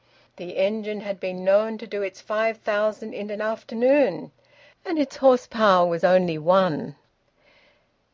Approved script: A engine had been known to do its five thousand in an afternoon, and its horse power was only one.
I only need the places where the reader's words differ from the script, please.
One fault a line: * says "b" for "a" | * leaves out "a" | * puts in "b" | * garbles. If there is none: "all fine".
* says "The" for "A"